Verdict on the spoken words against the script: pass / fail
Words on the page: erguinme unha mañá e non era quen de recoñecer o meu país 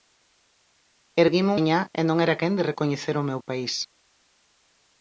fail